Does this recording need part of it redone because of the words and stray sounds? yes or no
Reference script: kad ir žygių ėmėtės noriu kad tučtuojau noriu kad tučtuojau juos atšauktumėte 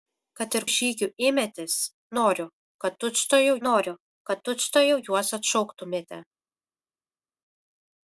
no